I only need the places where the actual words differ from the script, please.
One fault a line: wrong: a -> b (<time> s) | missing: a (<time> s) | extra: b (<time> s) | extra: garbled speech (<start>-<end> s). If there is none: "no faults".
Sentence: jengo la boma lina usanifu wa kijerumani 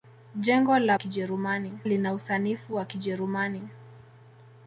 wrong: boma -> kijerumani (0.9 s)